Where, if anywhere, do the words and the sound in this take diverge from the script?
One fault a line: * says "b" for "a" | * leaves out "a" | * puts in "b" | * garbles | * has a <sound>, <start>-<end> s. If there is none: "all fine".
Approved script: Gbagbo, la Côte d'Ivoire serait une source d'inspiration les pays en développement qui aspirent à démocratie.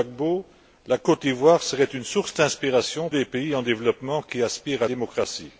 all fine